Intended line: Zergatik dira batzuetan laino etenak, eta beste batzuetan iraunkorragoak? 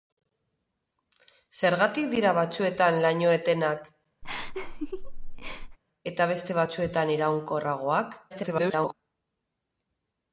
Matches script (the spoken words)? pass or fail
fail